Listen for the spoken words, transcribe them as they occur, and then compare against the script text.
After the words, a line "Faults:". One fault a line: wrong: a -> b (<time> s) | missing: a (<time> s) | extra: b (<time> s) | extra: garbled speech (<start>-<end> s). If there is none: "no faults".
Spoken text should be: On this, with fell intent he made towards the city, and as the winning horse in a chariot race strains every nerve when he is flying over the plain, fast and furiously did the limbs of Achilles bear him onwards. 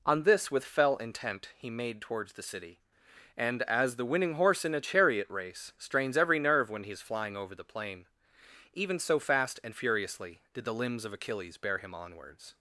On this, with fell intent he made towards the city, and as the winning horse in a chariot race strains every nerve when he is flying over the plain, even so fast and furiously did the limbs of Achilles bear him onwards.
Faults:
extra: even so (8.7 s)